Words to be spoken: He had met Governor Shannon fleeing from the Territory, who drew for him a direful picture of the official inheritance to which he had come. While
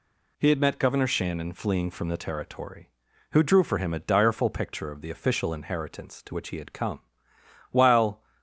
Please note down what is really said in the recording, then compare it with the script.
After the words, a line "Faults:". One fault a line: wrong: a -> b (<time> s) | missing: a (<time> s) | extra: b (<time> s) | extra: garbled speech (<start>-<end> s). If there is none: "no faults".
He had met Governor Shannon fleeing from the Territory, who drew for him a direful picture of the official inheritance to which he had come. While
Faults:
no faults